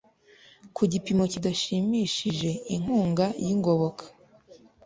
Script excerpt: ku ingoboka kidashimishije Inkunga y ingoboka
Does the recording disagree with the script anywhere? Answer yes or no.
yes